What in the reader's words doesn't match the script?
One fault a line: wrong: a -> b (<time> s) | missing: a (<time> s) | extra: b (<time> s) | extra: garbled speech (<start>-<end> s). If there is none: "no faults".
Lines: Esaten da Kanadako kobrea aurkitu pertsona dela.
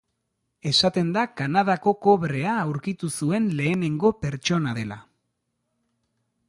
extra: zuen lehenengo (3.2 s)